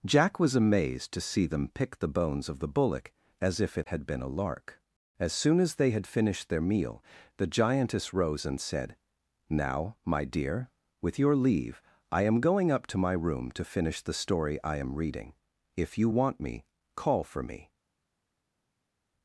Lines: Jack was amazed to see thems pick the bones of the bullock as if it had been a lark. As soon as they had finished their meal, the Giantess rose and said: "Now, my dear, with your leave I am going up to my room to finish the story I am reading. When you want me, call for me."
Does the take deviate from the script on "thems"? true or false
true